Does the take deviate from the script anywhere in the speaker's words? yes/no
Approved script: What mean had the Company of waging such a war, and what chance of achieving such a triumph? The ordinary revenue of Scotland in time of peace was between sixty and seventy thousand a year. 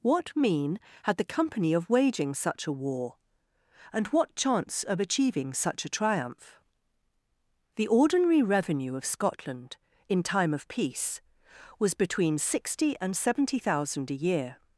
no